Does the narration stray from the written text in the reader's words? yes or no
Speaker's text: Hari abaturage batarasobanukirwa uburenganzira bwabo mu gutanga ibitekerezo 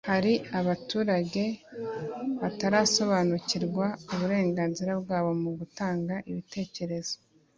no